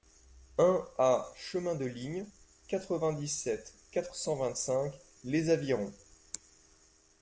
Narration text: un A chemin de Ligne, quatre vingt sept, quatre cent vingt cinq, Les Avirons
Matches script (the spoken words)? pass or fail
fail